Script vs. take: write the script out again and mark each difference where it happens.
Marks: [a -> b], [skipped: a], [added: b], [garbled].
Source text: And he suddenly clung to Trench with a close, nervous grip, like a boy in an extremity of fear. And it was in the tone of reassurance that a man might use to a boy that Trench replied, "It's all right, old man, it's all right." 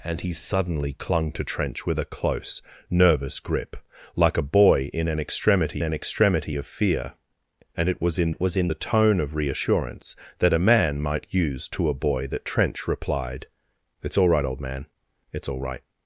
And he suddenly clung to Trench with a close, nervous grip, like a boy in an extremity [added: an extremity] of fear. And it was in [added: it was in] the tone of reassurance that a man might use to a boy that Trench replied, "It's all right, old man, it's all right."